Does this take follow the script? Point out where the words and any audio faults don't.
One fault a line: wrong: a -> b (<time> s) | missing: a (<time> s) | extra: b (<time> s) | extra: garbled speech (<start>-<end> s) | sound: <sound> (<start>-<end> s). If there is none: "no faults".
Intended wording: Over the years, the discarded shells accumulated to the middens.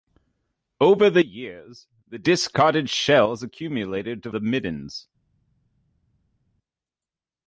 no faults